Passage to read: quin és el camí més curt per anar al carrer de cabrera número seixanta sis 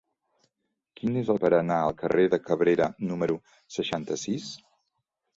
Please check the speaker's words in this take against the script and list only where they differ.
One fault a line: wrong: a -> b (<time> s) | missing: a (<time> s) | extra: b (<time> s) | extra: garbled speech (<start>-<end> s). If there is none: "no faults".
missing: camí més curt (1.4 s)